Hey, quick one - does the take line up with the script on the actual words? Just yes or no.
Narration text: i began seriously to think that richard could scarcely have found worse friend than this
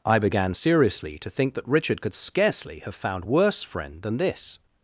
yes